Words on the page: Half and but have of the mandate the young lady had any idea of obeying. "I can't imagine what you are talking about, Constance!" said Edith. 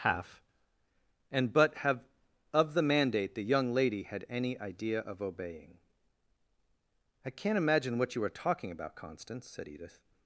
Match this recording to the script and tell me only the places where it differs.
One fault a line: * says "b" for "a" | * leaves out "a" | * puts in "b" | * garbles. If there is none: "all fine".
all fine